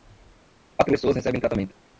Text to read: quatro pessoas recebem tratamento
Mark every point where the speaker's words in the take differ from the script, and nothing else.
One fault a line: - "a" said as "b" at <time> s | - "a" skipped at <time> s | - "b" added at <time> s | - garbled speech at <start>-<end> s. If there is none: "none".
none